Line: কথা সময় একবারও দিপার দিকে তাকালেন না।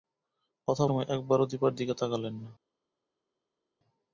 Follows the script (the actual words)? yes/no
yes